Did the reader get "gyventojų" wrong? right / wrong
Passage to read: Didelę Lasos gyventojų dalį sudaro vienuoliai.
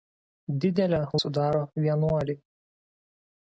wrong